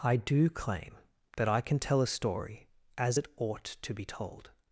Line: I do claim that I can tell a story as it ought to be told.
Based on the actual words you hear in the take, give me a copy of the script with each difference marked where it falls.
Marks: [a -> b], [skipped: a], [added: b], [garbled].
I do claim that I can tell a story as it ought to be told.